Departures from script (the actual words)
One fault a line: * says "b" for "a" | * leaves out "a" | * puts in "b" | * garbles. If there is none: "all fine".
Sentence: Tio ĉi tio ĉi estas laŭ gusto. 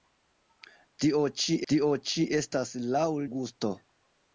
all fine